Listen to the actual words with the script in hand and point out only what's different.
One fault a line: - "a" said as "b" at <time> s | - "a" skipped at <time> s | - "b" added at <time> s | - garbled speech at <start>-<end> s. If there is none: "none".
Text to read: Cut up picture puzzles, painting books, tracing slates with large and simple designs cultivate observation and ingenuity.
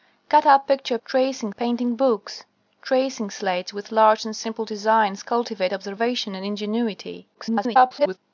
- "puzzles" said as "tracing" at 1.0 s
- garbled speech at 7.3-8.2 s